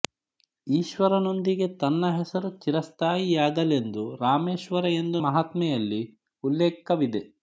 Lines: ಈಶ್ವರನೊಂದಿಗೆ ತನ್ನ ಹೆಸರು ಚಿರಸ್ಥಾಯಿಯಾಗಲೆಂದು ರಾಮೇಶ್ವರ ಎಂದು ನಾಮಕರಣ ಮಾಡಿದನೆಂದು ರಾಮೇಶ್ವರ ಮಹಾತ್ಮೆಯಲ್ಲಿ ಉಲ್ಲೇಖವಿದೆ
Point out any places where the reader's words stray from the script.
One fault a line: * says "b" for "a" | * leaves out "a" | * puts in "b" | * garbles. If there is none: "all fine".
* leaves out "ನಾಮಕರಣ ಮಾಡಿದನೆಂದು ರಾಮೇಶ್ವರ"